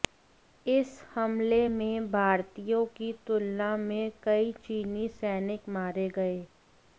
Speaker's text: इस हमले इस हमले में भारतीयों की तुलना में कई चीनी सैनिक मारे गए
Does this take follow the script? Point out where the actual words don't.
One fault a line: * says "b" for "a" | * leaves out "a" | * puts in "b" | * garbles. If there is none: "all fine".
* leaves out "इस हमले"